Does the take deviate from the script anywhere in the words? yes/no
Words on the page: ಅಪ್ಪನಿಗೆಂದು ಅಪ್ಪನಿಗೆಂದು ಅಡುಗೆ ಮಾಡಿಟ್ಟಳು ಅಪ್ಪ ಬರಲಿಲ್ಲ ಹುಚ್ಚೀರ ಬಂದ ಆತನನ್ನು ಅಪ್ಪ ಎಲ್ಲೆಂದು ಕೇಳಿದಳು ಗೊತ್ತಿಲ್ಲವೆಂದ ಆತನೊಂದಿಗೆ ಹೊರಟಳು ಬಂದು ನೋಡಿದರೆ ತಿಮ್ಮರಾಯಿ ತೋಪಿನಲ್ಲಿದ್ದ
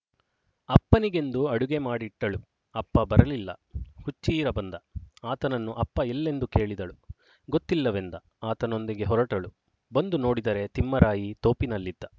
yes